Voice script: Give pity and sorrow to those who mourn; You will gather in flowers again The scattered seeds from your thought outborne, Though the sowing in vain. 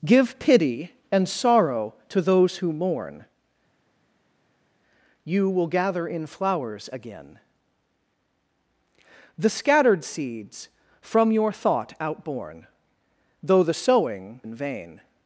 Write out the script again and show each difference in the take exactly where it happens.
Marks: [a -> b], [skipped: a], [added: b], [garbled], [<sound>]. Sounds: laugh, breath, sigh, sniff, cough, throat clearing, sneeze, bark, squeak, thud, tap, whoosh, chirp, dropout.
Give pity and sorrow to those who mourn; You will gather in flowers again The scattered seeds from your thought outborne, Though the sowing in vain.